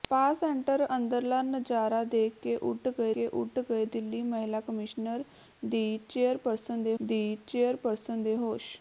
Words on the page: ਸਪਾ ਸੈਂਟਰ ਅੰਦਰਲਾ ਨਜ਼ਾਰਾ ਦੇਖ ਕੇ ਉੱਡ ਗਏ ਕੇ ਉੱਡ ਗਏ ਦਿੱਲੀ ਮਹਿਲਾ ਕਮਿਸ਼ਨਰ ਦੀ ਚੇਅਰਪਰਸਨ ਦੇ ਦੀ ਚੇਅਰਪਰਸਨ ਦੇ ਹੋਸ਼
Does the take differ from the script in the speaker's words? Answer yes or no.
no